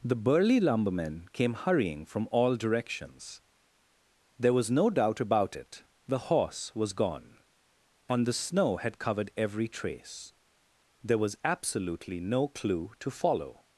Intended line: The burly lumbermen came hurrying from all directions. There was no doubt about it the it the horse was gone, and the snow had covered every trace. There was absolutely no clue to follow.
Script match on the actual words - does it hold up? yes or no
no